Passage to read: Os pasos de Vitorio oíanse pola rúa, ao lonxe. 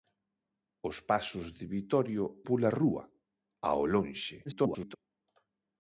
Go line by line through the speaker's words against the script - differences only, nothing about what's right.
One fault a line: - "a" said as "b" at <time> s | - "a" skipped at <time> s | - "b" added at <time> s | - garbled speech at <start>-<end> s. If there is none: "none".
- "oíanse" skipped at 2.2 s
- garbled speech at 4.4-5.0 s